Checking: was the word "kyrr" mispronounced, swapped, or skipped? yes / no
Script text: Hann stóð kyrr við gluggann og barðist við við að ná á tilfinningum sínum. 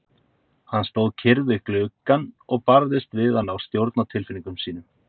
no